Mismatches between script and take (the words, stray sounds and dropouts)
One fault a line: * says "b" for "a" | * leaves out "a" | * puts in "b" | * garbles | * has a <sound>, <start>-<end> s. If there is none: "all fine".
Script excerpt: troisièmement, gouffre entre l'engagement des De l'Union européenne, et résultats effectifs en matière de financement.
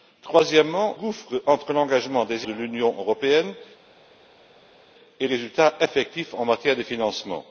all fine